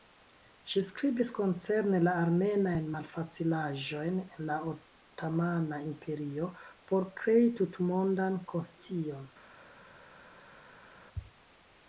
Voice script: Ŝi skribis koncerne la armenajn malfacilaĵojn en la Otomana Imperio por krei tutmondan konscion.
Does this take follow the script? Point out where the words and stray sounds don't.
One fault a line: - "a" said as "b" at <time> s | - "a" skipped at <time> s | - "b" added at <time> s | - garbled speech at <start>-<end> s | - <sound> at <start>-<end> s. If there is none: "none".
none